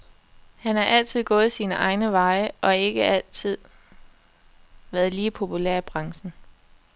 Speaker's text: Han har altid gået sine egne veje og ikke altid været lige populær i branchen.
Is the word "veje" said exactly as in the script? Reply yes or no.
yes